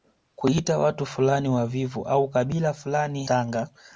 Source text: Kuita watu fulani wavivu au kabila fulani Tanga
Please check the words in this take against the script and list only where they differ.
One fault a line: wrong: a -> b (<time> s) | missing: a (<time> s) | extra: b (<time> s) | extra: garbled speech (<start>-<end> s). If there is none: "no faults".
no faults